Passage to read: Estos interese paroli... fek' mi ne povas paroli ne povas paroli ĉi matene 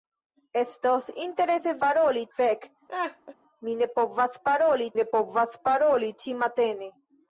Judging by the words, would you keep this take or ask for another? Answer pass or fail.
pass